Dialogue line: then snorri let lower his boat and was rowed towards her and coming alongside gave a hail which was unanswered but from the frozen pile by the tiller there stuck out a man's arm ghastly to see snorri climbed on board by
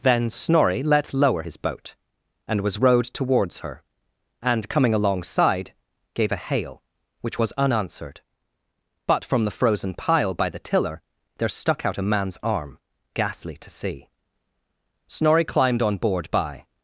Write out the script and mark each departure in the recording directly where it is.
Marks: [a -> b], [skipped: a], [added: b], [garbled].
then snorri let lower his boat and was rowed towards her and coming alongside gave a hail which was unanswered but from the frozen pile by the tiller there stuck out a man's arm ghastly to see snorri climbed on board by